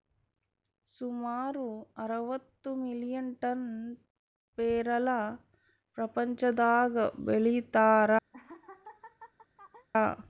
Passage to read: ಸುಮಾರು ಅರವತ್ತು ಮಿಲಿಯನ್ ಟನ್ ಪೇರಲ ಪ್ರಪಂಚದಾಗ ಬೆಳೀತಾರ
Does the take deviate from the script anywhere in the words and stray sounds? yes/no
yes